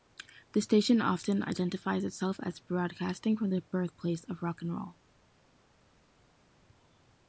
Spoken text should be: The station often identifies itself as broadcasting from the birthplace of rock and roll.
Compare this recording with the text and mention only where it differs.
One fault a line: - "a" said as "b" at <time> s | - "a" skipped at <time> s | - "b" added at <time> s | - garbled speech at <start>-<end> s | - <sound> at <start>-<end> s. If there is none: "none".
none